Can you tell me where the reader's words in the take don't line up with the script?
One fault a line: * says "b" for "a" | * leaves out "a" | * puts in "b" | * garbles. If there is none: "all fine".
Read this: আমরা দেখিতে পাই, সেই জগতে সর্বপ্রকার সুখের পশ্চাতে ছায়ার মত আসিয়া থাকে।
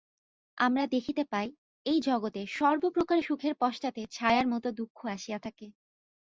* says "এই" for "সেই"
* puts in "দুঃখ"